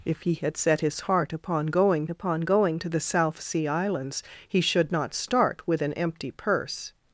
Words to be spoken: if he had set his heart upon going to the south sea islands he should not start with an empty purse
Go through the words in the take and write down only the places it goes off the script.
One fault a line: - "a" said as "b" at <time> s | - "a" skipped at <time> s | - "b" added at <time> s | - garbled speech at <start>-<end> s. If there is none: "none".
- "upon going" added at 2.1 s